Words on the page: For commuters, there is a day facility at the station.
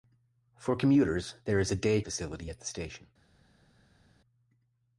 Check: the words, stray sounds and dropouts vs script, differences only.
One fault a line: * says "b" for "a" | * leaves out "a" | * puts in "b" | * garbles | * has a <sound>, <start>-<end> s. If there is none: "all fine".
all fine